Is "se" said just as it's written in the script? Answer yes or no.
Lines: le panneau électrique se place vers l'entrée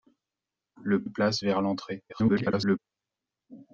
no